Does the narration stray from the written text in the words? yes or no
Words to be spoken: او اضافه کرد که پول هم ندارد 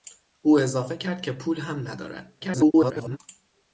yes